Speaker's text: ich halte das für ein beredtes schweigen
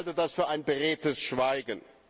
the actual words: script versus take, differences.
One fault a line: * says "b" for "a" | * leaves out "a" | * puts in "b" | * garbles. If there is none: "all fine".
all fine